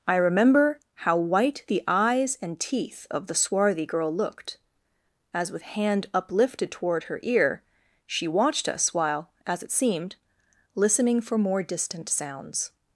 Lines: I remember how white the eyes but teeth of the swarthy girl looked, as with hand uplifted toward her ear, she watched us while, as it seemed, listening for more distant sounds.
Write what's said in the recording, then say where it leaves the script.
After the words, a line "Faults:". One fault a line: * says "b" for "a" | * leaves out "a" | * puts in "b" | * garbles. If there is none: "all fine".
I remember how white the eyes and teeth of the swarthy girl looked, as with hand uplifted toward her ear, she watched us while, as it seemed, listening for more distant sounds.
Faults:
* says "and" for "but"